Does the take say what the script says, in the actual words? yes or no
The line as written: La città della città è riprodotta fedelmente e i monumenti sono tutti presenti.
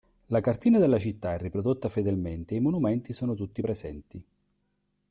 no